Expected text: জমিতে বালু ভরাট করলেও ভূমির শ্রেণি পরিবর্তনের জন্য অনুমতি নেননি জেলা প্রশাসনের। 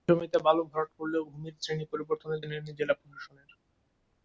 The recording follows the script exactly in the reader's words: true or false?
false